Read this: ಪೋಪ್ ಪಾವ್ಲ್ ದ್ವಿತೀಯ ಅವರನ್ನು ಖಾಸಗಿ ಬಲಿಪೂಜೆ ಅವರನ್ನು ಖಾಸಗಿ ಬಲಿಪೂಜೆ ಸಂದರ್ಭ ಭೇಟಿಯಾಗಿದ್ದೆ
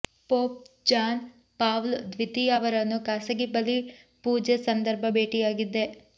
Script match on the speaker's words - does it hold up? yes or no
no